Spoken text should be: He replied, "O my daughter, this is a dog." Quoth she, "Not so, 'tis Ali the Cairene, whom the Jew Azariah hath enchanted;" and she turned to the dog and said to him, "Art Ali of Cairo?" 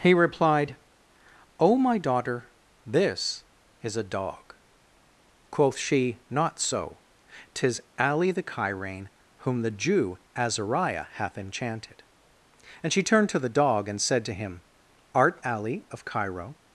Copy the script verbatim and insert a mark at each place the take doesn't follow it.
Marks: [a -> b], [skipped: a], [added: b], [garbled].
He replied, "O my daughter, this is a dog." Quoth she, "Not so, 'tis Ali the Cairene, whom the Jew Azariah hath enchanted;" and she turned to the dog and said to him, "Art Ali of Cairo?"